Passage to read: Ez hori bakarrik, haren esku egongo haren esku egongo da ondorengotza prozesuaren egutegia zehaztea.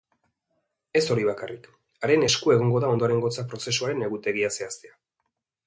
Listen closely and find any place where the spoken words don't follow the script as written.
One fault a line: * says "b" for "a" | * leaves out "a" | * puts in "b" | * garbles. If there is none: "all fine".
* leaves out "haren esku egongo"